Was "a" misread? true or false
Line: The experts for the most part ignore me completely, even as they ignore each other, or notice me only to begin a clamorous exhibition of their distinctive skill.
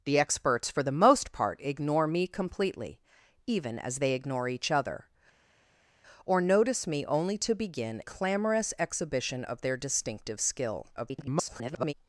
true